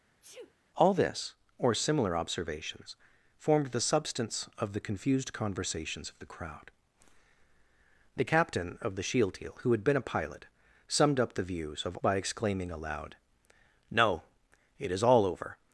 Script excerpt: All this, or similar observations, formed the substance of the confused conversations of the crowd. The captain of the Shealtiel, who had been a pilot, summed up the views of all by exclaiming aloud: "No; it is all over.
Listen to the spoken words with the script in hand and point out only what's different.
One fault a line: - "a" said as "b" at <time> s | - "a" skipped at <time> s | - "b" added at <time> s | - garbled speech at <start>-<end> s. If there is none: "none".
- "all" skipped at 12.0 s